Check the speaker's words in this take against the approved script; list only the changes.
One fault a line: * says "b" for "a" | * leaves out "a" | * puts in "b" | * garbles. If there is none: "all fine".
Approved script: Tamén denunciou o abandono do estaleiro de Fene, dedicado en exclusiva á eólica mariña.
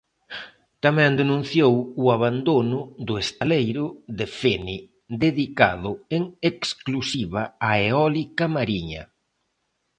all fine